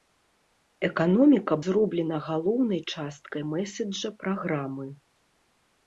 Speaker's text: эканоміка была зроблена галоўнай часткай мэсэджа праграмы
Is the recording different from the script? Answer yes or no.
yes